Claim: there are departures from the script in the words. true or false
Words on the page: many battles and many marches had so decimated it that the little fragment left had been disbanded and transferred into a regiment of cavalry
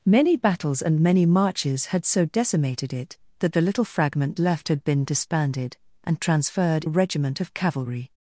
true